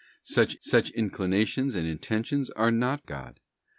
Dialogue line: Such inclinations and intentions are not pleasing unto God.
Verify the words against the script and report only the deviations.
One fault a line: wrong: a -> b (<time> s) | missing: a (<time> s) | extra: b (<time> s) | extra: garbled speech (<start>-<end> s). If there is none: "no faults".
extra: such (0.6 s)
missing: pleasing unto (3.1 s)